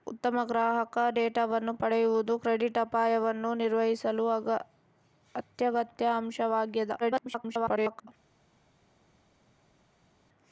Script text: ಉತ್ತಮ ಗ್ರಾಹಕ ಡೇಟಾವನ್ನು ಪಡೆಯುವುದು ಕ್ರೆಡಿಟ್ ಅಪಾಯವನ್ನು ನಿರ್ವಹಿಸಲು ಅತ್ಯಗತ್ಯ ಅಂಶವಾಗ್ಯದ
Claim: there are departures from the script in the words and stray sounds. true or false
true